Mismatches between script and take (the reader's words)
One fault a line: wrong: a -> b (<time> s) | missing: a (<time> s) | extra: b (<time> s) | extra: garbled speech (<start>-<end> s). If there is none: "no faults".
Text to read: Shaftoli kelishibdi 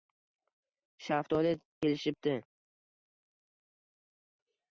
no faults